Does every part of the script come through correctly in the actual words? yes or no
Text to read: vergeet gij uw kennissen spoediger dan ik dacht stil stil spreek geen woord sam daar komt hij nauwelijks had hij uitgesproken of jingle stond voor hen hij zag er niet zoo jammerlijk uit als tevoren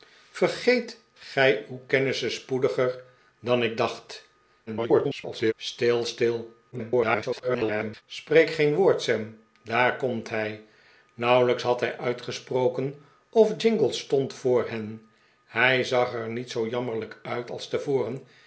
no